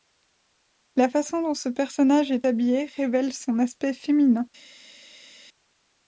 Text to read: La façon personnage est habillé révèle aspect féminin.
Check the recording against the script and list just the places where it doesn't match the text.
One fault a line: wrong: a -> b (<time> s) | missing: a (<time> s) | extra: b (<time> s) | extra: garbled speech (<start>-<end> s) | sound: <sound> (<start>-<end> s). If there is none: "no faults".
extra: dont ce (1.4 s)
extra: son (3.3 s)